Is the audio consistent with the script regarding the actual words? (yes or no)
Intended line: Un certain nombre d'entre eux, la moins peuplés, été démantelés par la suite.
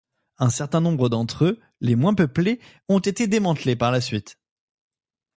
no